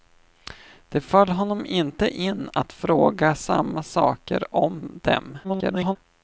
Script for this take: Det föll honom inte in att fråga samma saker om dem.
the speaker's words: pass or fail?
fail